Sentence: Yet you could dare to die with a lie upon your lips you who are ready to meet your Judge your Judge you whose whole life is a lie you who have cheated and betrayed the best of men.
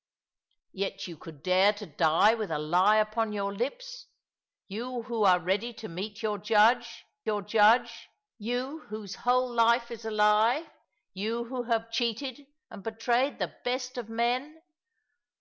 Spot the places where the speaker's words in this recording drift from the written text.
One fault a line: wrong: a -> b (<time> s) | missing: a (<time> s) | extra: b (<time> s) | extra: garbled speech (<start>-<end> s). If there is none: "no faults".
no faults